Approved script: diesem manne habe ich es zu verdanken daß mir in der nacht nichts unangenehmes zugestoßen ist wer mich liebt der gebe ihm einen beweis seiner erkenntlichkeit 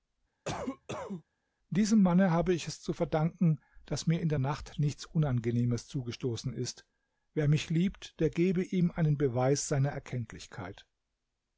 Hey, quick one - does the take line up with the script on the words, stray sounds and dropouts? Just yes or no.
no